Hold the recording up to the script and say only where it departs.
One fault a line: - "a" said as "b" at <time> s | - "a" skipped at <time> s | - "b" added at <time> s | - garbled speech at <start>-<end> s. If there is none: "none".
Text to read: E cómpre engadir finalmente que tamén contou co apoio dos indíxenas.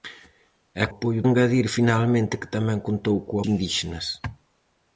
- "cómpre" said as "apoio" at 0.9 s
- "apoio dos" skipped at 3.4 s